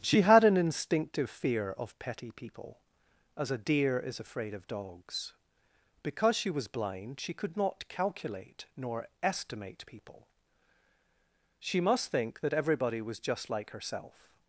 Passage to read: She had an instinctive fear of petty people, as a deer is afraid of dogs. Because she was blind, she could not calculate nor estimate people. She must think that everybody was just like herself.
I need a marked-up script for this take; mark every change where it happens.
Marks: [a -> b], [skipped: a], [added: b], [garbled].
She had an instinctive fear of petty people, as a deer is afraid of dogs. Because she was blind, she could not calculate nor estimate people. She must think that everybody was just like herself.